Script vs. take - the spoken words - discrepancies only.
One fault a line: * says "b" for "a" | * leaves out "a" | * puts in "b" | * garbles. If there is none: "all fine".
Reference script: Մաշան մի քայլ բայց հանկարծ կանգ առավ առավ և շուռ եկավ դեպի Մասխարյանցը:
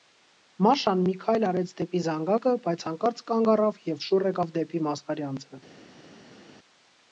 * puts in "արեց դեպի զանգակը"
* leaves out "առավ"